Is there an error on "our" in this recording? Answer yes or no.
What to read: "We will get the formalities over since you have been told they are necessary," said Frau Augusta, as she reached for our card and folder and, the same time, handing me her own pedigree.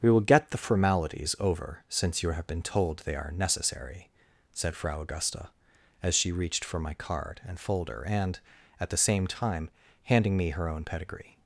yes